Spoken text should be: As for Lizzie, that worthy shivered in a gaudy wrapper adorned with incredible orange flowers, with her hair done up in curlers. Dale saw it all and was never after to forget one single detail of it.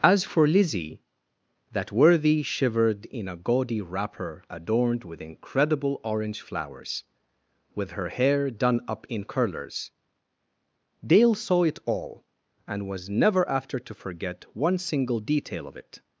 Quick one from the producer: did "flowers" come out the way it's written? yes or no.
yes